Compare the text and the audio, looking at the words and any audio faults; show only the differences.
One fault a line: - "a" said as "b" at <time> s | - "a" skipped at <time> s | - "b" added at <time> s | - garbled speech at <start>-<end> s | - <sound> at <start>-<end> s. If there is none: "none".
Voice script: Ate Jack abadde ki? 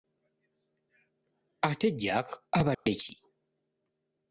- dropout at 2.7-2.9 s